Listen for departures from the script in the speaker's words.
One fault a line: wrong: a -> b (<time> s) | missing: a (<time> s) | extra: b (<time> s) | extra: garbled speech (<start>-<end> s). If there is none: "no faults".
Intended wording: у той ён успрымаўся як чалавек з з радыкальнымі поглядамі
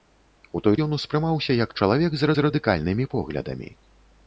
no faults